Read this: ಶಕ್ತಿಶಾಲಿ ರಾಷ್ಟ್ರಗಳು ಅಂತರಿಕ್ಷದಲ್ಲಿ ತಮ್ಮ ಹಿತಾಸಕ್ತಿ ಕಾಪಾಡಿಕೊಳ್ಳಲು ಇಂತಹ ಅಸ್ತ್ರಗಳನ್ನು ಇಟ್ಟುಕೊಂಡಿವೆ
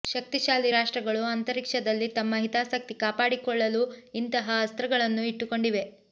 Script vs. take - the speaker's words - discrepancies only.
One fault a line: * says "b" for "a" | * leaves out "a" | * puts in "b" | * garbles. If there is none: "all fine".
all fine